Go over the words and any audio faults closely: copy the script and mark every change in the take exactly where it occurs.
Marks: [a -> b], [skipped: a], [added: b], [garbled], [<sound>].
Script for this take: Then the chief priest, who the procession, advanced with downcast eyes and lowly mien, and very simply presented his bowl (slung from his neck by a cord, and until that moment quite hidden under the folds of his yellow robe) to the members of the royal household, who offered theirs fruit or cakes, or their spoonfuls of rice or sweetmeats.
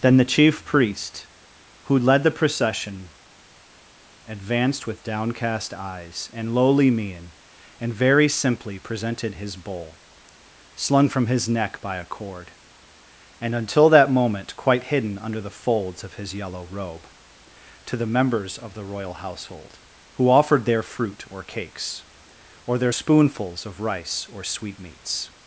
Then the chief priest, who [added: led] the procession, advanced with downcast eyes and lowly mien, and very simply presented his bowl (slung from his neck by a cord, and until that moment quite hidden under the folds of his yellow robe) to the members of the royal household, who offered [theirs -> their] fruit or cakes, or their spoonfuls of rice or sweetmeats.